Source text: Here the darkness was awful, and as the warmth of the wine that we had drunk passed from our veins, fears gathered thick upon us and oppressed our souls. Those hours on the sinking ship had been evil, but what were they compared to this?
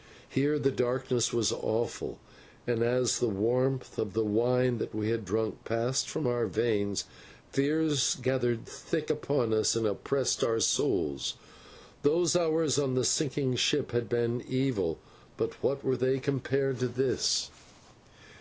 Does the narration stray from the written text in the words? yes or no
no